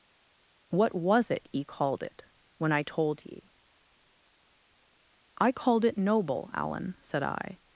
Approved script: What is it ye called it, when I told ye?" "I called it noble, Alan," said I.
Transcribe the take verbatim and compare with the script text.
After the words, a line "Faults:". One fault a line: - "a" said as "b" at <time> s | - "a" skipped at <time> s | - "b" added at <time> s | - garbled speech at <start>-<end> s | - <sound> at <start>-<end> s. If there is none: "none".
What was it ye called it, when I told ye?" "I called it noble, Alan," said I.
Faults:
- "is" said as "was" at 0.9 s